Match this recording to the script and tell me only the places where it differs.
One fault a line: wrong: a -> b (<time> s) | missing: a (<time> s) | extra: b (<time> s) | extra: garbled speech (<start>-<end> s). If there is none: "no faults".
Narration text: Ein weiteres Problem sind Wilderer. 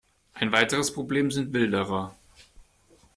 no faults